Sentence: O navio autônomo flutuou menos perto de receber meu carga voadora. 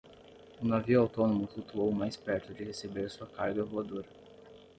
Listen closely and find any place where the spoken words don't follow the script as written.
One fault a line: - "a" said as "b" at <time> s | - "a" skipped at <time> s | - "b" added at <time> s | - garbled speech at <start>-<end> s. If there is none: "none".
- "menos" said as "mais" at 1.9 s
- "meu" said as "sua" at 3.1 s